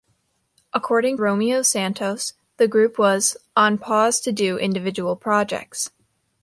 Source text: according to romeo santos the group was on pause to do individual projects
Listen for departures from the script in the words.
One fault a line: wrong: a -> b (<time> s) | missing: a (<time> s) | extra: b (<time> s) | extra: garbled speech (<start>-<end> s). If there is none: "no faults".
missing: to (1.2 s)